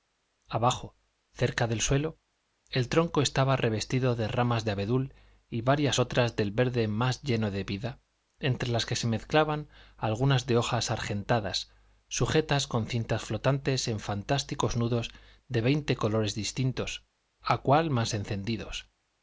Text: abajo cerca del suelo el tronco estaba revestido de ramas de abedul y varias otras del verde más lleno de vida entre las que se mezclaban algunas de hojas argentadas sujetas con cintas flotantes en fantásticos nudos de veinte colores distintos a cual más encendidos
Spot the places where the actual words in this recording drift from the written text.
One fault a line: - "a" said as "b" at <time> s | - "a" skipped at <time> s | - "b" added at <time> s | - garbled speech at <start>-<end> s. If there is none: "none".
none